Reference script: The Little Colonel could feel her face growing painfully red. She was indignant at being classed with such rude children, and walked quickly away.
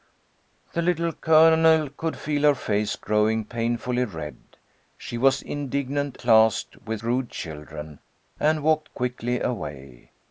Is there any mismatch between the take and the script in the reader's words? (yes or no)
yes